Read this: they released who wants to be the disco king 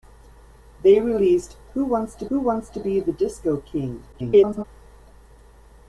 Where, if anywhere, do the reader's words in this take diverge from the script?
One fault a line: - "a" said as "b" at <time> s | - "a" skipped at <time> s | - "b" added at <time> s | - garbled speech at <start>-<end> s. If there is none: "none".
- "who wants to" added at 2.3 s
- garbled speech at 4.1-4.6 s